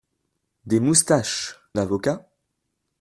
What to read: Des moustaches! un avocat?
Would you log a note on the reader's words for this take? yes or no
yes